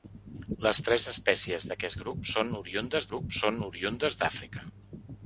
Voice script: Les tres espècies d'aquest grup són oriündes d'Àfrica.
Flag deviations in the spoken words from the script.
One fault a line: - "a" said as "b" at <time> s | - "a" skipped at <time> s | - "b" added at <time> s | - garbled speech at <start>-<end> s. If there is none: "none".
- "grup són oriündes" added at 3.1 s